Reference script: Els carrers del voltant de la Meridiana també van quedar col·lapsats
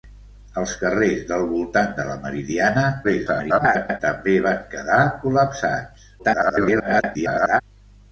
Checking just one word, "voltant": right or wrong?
right